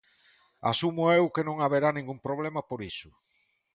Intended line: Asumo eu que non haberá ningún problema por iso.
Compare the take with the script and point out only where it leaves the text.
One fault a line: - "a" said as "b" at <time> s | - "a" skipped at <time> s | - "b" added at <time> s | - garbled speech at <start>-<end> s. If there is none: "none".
none